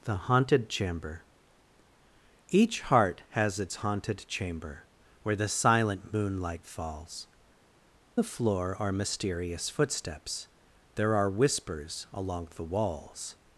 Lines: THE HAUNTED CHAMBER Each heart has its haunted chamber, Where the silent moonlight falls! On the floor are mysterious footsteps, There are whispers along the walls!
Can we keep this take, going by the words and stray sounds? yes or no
no